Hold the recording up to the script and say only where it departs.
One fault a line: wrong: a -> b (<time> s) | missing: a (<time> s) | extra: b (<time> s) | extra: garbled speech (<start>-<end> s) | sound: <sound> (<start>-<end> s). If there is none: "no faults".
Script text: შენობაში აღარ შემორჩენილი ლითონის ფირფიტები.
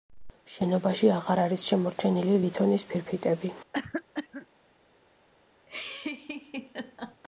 extra: არის (1.4 s)
sound: cough (3.7-4.5 s)
sound: laugh (5.7-7.2 s)